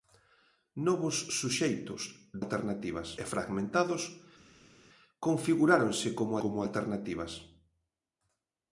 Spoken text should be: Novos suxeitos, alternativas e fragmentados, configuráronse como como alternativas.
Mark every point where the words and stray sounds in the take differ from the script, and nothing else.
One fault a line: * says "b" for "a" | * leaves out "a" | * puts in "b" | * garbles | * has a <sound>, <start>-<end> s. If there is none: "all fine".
all fine